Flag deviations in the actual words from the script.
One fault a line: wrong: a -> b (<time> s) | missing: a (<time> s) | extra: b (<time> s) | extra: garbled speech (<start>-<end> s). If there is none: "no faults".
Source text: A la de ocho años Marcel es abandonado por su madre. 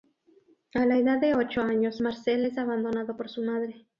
extra: edad (1.0 s)